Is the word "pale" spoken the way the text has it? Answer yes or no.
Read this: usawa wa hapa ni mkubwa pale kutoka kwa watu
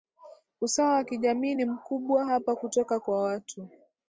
no